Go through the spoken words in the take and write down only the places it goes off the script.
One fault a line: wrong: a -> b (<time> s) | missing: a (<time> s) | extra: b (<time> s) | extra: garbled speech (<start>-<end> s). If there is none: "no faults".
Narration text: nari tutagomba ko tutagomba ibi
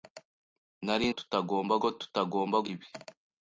no faults